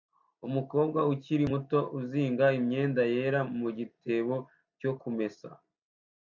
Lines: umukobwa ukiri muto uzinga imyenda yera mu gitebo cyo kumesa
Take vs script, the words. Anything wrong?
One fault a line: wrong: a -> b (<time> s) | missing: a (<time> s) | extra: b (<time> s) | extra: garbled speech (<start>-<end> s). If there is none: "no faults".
no faults